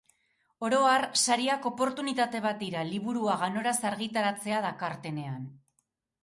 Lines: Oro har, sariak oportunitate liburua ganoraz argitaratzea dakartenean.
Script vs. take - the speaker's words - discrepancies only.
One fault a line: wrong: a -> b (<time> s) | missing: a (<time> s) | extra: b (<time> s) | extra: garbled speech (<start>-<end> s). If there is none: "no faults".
extra: bat dira (2.5 s)